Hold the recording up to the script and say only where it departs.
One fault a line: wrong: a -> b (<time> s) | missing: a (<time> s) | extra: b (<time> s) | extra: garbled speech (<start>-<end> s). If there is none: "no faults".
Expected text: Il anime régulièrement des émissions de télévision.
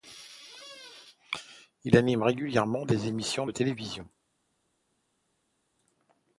no faults